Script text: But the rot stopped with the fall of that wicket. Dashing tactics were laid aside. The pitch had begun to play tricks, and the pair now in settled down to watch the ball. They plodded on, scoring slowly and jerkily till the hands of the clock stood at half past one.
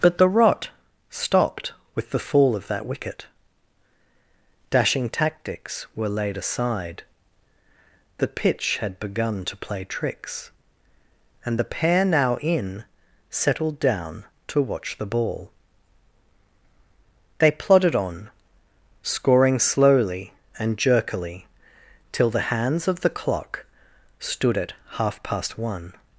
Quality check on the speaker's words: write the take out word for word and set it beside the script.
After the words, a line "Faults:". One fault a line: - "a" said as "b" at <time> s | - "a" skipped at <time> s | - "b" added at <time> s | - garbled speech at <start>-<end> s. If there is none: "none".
But the rot stopped with the fall of that wicket. Dashing tactics were laid aside. The pitch had begun to play tricks, and the pair now in settled down to watch the ball. They plodded on, scoring slowly and jerkily till the hands of the clock stood at half past one.
Faults:
none